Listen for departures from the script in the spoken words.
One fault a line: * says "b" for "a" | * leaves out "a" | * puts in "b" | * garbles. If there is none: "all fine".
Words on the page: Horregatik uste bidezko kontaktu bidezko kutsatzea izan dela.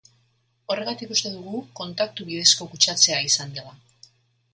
* says "dugu" for "bidezko"